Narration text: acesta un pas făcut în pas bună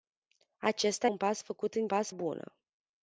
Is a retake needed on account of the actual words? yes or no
no